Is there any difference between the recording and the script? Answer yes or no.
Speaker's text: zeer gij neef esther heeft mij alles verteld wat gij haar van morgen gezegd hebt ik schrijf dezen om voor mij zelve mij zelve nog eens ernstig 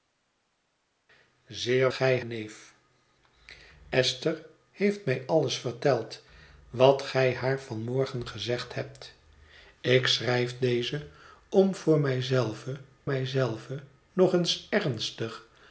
no